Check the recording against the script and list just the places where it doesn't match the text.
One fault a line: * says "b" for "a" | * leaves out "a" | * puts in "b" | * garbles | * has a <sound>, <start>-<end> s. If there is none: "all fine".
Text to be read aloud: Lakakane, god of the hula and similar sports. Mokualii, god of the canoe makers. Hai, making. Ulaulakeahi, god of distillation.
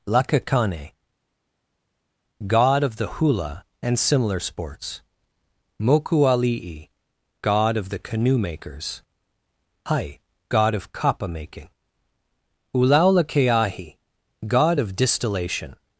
* puts in "god of kapa"